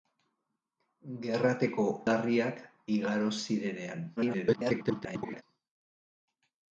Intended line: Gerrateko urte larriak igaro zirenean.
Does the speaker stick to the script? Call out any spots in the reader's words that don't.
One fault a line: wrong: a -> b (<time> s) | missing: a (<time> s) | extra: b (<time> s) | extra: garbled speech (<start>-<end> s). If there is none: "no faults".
missing: urte (1.9 s)
extra: garbled speech (4.2-5.4 s)